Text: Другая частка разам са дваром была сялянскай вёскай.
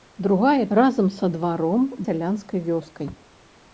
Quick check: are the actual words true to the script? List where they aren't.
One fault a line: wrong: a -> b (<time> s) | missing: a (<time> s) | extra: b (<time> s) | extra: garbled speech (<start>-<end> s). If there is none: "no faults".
missing: частка (0.7 s)
missing: была (1.8 s)